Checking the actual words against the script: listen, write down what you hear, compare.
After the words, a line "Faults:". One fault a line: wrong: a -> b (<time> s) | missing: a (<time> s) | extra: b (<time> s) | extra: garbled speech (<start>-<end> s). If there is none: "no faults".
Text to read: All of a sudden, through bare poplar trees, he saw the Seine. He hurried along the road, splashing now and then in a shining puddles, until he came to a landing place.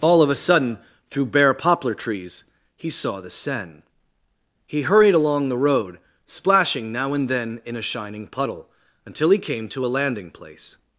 All of a sudden, through bare poplar trees, he saw the Seine. He hurried along the road, splashing now and then in a shining puddle, until he came to a landing place.
Faults:
wrong: puddles -> puddle (8.2 s)